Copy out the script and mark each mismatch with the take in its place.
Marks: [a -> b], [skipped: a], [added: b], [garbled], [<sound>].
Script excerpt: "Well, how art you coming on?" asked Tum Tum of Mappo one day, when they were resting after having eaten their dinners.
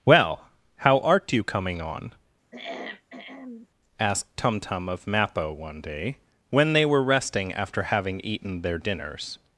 "Well, how art you coming on?" [throat clearing] asked Tum Tum of Mappo one day, when they were resting after having eaten their dinners.